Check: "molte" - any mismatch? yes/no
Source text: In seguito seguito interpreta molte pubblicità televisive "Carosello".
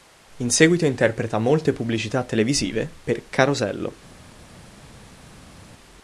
no